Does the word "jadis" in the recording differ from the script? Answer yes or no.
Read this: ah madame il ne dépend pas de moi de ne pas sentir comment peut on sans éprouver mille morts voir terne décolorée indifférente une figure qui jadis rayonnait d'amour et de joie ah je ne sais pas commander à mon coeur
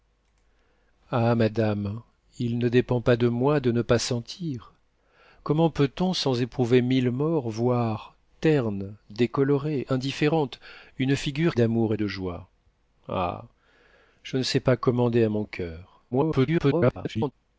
yes